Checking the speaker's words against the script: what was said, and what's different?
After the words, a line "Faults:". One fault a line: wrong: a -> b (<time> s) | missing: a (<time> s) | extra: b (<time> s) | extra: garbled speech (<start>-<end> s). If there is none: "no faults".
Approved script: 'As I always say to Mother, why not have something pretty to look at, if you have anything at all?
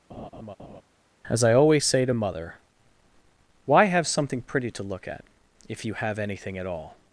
'As I always say to Mother, why have something pretty to look at, if you have anything at all?
Faults:
missing: not (3.9 s)